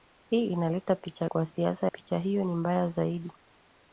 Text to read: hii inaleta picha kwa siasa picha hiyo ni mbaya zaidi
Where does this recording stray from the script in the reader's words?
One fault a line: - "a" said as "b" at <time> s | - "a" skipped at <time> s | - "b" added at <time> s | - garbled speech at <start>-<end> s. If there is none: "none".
none